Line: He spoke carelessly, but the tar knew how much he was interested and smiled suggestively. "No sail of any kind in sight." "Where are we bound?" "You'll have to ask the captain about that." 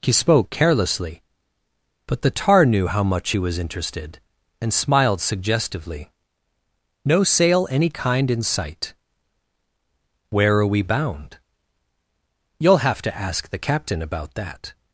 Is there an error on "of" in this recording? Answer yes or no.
yes